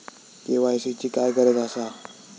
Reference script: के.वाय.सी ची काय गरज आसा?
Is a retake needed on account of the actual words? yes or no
no